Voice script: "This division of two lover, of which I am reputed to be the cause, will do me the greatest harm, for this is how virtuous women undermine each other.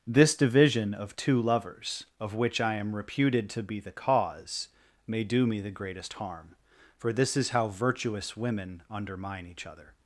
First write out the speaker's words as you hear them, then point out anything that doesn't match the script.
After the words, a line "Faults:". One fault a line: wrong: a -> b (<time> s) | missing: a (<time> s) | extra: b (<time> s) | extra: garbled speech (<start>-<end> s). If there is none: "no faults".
"This division of two lovers, of which I am reputed to be the cause, may do me the greatest harm, for this is how virtuous women undermine each other.
Faults:
wrong: lover -> lovers (1.4 s)
wrong: will -> may (5.0 s)